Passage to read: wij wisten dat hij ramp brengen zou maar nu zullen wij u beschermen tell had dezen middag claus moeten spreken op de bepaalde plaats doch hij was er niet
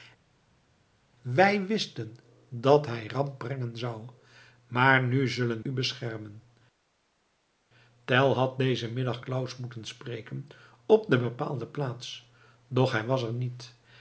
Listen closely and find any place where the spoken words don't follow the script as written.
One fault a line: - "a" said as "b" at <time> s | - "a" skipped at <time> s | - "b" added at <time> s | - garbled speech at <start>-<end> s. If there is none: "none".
- "wij" skipped at 5.6 s